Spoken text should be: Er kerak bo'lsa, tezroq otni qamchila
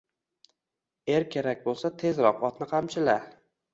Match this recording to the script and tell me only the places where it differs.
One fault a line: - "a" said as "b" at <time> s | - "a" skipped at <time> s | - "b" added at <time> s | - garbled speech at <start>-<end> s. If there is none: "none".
none